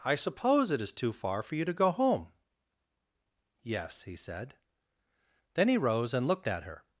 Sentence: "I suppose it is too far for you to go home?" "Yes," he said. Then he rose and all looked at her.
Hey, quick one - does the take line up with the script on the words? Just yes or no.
no